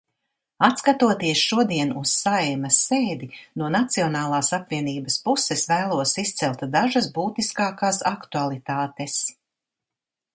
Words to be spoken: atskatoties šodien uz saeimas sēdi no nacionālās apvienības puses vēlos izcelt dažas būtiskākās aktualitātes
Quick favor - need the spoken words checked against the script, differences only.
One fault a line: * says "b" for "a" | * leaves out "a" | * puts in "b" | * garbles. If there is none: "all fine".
all fine